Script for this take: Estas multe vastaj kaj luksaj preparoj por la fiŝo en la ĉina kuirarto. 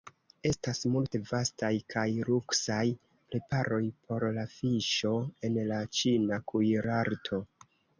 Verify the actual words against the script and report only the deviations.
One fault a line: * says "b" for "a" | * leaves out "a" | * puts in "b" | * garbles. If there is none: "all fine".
all fine